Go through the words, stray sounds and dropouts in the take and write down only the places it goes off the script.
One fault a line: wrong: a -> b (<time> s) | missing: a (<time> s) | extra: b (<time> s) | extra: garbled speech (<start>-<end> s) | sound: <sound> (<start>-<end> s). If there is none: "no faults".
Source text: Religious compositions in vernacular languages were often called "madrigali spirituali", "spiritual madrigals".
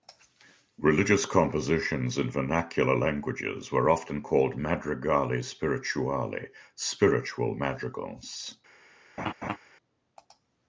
sound: laugh (9.2-9.6 s)